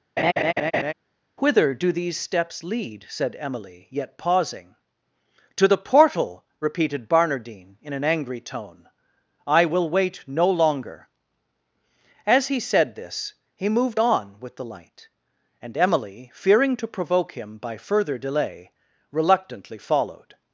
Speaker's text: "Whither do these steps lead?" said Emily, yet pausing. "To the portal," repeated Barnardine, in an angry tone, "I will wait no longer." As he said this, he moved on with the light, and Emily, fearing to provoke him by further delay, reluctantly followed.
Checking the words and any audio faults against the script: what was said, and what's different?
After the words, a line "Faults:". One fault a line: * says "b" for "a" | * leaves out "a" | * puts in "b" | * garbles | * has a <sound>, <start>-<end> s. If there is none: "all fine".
"Whither do these steps lead?" said Emily, yet pausing. "To the portal," repeated Barnardine, in an angry tone, "I will wait no longer." As he said this, he moved on with the light, and Emily, fearing to provoke him by further delay, reluctantly followed.
Faults:
* has a laugh, 0.2-0.9 s